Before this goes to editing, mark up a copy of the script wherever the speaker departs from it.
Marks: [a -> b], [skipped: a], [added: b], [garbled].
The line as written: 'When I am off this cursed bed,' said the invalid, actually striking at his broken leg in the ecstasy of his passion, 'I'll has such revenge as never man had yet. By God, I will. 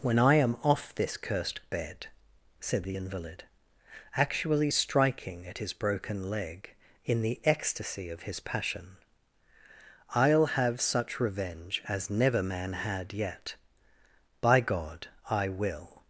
'When I am off this cursed bed,' said the invalid, actually striking at his broken leg in the ecstasy of his passion, 'I'll [has -> have] such revenge as never man had yet. By God, I will.